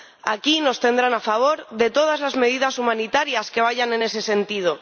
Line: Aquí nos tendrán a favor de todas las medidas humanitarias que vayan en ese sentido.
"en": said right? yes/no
yes